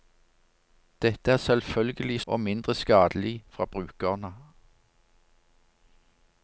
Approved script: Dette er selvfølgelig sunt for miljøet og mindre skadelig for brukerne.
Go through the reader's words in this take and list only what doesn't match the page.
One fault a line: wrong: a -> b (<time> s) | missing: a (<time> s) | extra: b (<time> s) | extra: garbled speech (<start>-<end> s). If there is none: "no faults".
missing: sunt for miljøet (2.2 s)